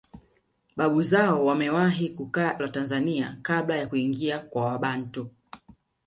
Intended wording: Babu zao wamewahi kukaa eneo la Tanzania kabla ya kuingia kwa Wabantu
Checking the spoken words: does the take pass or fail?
fail